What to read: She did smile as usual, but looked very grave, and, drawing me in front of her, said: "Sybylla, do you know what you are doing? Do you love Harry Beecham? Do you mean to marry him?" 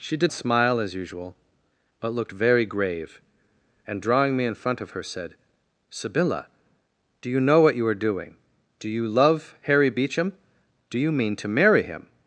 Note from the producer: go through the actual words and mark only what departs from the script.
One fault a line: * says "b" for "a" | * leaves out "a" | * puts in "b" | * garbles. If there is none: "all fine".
all fine